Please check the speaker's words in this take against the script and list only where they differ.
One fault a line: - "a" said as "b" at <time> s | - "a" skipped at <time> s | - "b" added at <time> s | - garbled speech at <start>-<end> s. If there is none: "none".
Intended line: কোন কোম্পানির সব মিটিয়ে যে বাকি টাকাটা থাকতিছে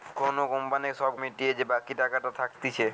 none